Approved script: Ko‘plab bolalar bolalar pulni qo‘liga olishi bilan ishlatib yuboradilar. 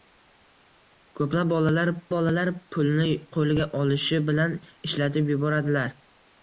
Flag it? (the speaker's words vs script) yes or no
no